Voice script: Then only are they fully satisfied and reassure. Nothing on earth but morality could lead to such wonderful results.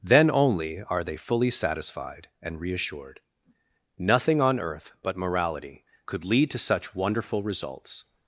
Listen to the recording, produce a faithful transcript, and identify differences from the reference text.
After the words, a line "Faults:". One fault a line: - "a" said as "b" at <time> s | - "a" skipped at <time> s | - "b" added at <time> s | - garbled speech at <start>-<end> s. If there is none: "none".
Then only are they fully satisfied and reassured. Nothing on earth but morality could lead to such wonderful results.
Faults:
- "reassure" said as "reassured" at 2.6 s